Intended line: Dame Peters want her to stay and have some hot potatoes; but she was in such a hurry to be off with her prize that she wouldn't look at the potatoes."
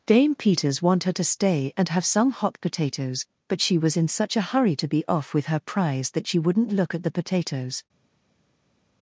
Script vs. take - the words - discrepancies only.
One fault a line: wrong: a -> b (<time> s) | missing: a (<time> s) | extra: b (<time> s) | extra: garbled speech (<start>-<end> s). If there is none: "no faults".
no faults